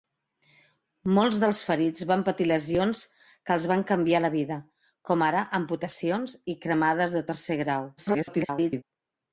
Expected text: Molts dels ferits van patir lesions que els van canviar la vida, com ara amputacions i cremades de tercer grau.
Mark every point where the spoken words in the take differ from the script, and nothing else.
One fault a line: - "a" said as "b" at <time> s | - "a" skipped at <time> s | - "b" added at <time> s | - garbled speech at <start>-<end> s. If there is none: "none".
- garbled speech at 8.0-8.8 s